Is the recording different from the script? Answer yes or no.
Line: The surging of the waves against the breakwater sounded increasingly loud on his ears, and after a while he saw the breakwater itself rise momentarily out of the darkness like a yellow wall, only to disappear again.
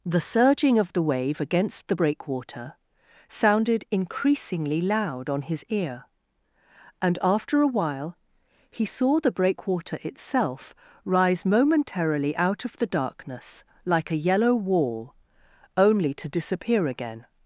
yes